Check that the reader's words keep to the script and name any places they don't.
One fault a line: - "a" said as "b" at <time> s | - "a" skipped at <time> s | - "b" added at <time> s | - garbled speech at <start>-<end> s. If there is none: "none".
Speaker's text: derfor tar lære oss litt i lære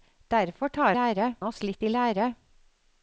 none